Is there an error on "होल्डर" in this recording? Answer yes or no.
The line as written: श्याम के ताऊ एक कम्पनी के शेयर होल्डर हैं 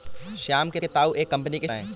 yes